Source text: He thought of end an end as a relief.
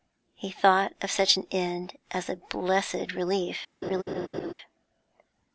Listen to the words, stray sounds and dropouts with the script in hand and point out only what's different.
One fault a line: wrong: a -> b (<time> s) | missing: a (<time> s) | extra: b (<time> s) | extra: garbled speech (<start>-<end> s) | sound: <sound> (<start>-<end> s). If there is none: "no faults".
wrong: end -> such (1.1 s)
extra: blessed (2.4 s)
sound: laugh (3.8-4.5 s)